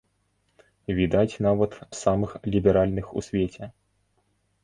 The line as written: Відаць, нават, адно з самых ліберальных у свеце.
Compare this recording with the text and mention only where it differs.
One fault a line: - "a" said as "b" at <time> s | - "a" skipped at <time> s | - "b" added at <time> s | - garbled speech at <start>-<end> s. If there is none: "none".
- "адно" skipped at 1.8 s